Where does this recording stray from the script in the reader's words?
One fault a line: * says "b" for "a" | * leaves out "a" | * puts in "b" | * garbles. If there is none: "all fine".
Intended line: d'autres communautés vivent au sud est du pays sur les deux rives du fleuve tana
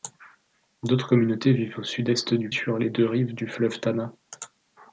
* leaves out "pays"